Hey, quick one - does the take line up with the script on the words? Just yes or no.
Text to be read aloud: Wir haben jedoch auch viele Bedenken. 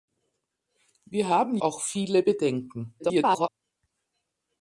no